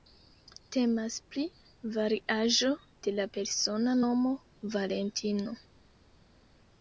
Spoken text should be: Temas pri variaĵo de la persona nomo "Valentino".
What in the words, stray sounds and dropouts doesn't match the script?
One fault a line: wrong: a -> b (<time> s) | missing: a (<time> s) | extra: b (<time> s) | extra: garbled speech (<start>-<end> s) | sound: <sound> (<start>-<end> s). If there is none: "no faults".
no faults